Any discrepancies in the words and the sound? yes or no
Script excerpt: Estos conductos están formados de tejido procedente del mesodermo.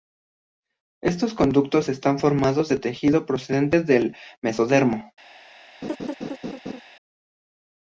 yes